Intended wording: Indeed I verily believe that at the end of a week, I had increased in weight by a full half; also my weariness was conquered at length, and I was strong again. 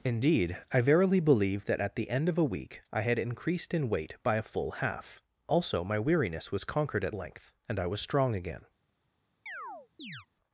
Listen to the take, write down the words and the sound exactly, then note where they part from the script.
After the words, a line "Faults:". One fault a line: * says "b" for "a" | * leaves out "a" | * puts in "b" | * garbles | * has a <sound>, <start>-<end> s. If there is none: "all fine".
Indeed I verily believe that at the end of a week, I had increased in weight by a full half; also my weariness was conquered at length, and I was strong again.
Faults:
* has a chirp, 9.5-10.3 s